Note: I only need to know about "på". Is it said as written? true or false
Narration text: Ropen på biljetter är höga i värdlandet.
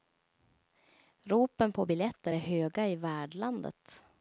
true